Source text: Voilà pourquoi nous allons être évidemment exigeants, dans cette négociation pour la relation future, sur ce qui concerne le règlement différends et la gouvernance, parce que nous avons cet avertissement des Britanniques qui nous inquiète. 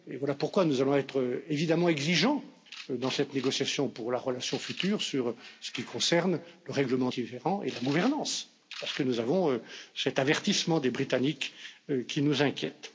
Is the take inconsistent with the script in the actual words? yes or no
no